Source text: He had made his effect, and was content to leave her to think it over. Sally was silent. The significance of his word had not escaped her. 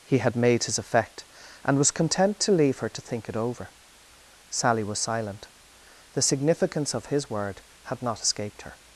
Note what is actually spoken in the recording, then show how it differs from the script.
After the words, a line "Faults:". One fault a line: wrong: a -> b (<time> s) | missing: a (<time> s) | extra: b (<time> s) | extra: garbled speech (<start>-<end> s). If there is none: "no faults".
He had made his effect, and was content to leave her to think it over. Sally was silent. The significance of his word had not escaped her.
Faults:
no faults